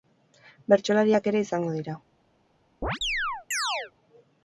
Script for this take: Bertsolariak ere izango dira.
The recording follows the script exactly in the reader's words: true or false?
true